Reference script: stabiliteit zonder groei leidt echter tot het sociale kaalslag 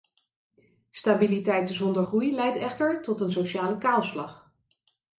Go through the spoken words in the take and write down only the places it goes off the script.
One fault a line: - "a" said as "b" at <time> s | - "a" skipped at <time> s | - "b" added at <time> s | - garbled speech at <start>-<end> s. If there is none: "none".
- "het" said as "een" at 3.2 s